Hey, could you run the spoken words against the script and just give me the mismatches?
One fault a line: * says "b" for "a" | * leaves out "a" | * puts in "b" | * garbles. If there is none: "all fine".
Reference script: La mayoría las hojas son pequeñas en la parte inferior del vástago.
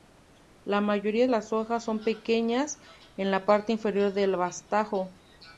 all fine